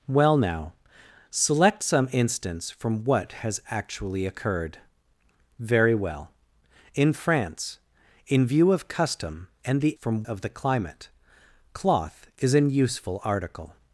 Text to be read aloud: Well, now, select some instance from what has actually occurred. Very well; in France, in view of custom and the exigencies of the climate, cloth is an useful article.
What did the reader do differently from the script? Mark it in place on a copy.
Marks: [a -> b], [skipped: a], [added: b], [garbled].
Well, now, select some instance from what has actually occurred. Very well; in France, in view of custom and the [exigencies -> from] of the climate, cloth is an useful article.